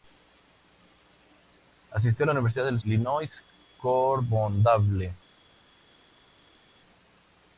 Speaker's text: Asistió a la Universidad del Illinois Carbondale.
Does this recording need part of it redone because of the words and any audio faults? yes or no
no